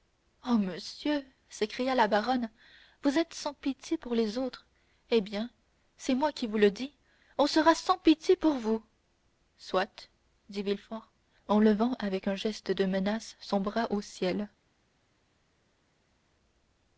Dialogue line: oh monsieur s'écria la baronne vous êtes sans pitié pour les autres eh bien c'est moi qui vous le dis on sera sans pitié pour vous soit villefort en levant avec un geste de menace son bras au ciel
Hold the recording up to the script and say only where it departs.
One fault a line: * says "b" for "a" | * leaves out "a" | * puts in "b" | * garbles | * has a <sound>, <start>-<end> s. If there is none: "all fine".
* puts in "dit"